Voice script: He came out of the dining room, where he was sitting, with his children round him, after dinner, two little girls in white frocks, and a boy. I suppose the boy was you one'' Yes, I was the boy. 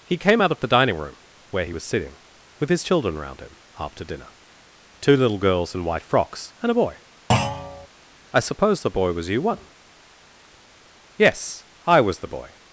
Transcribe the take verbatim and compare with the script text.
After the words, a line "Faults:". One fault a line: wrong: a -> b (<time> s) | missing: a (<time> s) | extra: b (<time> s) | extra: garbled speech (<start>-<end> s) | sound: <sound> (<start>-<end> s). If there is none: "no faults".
He came out of the dining room, where he was sitting, with his children round him, after dinner, two little girls in white frocks, and a boy. I suppose the boy was you one'' Yes, I was the boy.
Faults:
sound: thud (7.3-7.9 s)